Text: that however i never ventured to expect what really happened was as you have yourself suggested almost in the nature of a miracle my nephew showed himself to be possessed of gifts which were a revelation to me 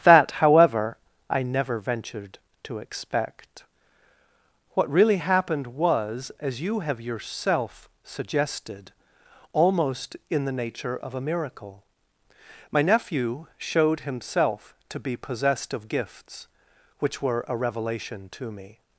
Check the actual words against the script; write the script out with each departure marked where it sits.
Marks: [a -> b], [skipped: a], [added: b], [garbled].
that however i never ventured to expect what really happened was as you have yourself suggested almost in the nature of a miracle my nephew showed himself to be possessed of gifts which were a revelation to me